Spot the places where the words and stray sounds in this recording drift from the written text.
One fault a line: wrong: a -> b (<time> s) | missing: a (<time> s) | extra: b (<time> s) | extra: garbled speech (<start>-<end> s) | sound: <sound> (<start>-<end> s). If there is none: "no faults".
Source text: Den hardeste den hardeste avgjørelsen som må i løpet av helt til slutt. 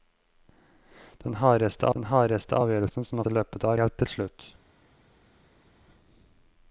no faults